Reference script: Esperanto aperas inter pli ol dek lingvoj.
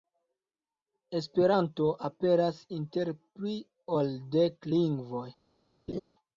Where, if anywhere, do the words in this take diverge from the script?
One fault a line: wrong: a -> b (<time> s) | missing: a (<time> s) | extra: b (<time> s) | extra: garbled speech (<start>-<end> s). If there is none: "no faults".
no faults